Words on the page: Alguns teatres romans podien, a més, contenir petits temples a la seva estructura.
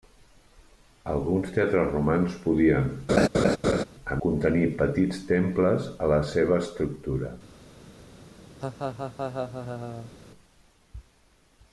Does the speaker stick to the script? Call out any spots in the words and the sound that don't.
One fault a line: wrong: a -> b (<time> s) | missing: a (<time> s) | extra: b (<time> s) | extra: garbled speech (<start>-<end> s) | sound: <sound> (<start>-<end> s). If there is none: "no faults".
sound: laugh (3.1-3.8 s)
missing: més (4.2 s)
sound: laugh (8.6-10.1 s)